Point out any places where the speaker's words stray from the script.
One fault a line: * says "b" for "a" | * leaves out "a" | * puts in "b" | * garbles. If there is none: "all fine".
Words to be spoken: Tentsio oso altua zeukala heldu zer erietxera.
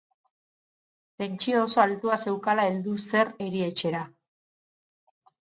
all fine